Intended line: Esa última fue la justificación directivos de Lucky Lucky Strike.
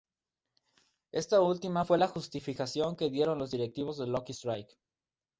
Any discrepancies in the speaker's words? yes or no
yes